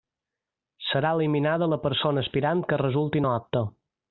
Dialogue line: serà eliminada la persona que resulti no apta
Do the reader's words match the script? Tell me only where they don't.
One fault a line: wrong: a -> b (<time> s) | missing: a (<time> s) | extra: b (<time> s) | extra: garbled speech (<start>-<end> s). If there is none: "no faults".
extra: aspirant (2.2 s)